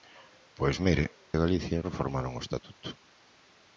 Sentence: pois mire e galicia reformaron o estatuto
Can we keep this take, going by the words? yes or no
yes